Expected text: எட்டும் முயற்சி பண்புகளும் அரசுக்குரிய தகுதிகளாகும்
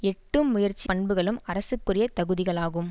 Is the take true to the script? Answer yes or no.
yes